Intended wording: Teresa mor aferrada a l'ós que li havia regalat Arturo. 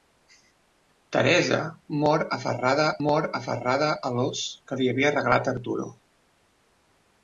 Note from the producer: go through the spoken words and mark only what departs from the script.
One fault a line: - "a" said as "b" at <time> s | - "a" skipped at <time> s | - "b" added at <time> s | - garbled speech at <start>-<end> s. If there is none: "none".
- "mor aferrada" added at 3.1 s